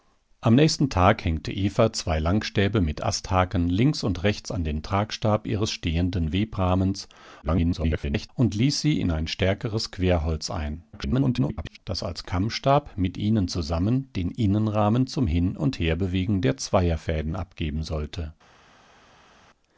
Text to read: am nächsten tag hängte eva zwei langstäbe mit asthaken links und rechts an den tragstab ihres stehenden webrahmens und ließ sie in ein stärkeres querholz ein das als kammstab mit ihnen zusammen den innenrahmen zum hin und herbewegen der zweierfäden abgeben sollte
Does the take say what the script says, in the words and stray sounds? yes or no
no